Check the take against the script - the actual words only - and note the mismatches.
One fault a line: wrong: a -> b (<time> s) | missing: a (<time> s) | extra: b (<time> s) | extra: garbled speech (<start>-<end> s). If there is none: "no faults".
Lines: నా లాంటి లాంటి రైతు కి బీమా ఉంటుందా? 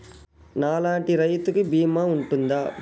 missing: లాంటి (1.1 s)